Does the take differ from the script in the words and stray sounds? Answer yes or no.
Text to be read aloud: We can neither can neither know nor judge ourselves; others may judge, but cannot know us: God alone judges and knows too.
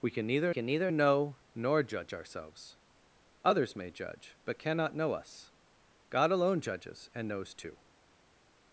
no